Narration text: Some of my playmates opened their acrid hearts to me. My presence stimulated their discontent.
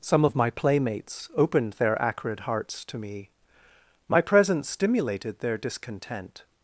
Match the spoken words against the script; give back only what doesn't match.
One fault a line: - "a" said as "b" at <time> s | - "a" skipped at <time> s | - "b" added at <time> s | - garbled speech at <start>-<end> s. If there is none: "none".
none